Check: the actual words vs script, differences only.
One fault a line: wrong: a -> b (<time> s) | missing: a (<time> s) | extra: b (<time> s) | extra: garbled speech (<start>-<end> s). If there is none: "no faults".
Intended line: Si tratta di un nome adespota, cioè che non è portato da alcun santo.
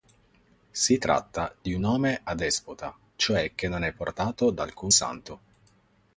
no faults